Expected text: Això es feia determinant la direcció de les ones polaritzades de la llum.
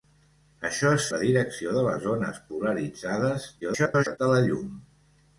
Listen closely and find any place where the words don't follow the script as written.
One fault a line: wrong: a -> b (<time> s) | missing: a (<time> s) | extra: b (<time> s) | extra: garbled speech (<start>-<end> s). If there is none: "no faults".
missing: feia determinant (1.1 s)
extra: garbled speech (3.6-4.2 s)